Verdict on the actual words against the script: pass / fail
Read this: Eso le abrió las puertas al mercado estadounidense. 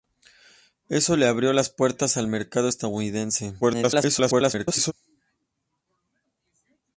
fail